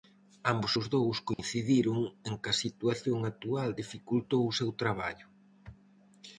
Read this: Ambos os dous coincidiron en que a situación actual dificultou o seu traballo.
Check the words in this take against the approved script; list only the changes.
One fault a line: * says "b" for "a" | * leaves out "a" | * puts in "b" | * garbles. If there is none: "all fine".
all fine